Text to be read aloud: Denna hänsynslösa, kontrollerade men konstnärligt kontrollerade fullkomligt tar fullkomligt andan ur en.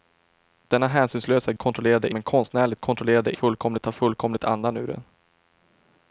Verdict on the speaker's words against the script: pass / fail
pass